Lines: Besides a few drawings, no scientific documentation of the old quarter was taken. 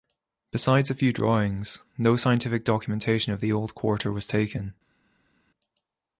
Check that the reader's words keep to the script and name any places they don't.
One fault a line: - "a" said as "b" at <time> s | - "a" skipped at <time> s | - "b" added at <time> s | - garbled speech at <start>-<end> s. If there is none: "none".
none